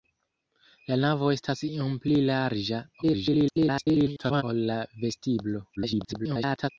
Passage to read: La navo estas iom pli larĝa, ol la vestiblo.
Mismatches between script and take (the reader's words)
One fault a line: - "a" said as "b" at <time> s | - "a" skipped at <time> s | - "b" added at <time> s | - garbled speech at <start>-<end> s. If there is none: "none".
- garbled speech at 3.0-4.4 s
- garbled speech at 5.8-6.7 s